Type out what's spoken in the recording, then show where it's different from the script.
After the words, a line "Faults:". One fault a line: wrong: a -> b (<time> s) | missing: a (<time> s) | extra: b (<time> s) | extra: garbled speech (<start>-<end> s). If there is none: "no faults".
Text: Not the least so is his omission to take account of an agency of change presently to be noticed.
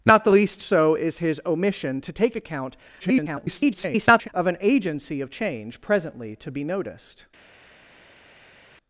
Not the least so is his omission to take account [garbled] of an agency of change presently to be noticed.
Faults:
extra: garbled speech (3.0-4.3 s)